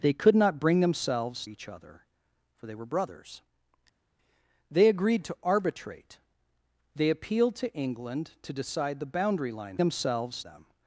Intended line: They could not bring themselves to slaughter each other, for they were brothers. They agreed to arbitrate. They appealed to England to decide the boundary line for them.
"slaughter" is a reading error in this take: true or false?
true